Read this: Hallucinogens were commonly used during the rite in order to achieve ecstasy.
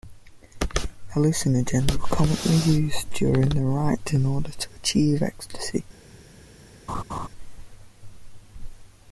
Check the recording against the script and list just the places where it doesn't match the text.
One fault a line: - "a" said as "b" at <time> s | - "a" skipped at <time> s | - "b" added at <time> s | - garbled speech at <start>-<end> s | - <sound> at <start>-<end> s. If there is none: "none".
- laugh at 6.9-7.3 s